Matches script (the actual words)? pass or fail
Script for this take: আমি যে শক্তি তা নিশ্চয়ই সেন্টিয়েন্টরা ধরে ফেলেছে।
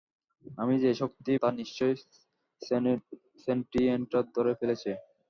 pass